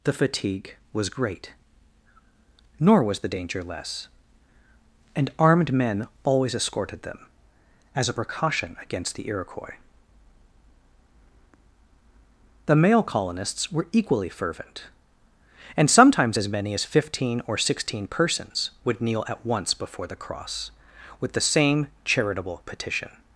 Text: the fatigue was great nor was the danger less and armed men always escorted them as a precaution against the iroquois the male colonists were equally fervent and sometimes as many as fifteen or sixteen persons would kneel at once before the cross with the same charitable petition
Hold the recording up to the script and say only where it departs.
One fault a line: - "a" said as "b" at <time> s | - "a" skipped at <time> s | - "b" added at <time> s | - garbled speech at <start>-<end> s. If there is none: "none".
none